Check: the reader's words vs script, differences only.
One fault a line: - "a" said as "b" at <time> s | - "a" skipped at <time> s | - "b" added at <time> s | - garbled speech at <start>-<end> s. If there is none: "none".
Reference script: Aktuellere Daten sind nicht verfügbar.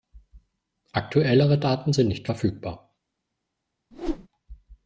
none